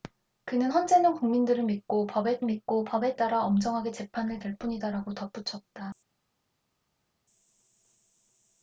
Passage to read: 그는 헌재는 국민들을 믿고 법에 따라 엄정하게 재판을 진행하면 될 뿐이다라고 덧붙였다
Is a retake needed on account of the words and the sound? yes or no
yes